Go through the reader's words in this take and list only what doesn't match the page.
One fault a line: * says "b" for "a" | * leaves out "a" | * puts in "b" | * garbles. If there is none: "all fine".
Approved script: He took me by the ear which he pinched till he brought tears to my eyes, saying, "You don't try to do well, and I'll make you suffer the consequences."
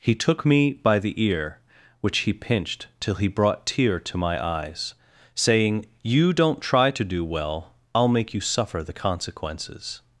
* says "tear" for "tears"
* leaves out "and"